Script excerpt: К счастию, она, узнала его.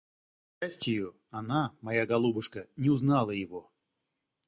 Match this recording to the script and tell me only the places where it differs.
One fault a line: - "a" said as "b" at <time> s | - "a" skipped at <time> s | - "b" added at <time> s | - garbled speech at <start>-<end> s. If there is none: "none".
- "моя голубушка не" added at 1.8 s